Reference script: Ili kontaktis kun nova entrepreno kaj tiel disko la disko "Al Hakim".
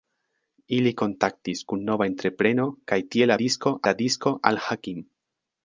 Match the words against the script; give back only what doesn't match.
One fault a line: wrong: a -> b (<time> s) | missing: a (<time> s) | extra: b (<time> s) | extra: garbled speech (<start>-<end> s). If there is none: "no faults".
no faults